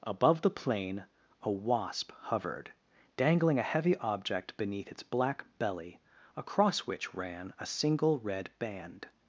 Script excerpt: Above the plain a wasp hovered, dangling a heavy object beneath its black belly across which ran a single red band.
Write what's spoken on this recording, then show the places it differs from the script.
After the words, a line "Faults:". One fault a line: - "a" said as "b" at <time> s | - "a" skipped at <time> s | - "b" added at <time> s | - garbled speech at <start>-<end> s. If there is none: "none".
Above the plain a wasp hovered, dangling a heavy object beneath its black belly across which ran a single red band.
Faults:
none